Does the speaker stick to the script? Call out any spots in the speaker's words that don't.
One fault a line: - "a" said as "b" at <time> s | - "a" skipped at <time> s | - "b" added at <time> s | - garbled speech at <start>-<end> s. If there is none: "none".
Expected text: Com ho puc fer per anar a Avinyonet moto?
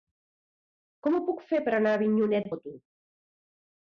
none